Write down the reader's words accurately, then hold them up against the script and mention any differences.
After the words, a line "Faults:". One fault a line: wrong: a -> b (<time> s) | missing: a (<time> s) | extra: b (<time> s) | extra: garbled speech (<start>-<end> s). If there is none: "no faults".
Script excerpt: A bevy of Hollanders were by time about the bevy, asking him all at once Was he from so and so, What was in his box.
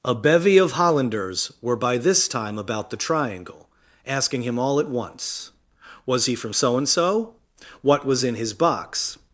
A bevy of Hollanders were by this time about the triangle, asking him all at once Was he from so and so, What was in his box.
Faults:
extra: this (2.0 s)
wrong: bevy -> triangle (3.0 s)